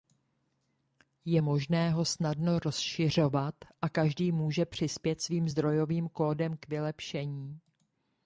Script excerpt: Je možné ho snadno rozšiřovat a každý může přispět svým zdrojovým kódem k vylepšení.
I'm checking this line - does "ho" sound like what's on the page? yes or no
yes